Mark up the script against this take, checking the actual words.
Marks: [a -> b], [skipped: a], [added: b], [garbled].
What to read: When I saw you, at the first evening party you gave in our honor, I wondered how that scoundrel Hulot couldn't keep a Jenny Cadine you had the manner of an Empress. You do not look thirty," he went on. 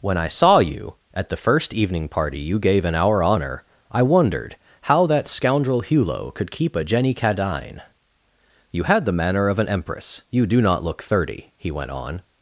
When I saw you, at the first evening party you gave in our honor, I wondered how that scoundrel Hulot [couldn't -> could] keep a Jenny Cadine you had the manner of an Empress. You do not look thirty," he went on.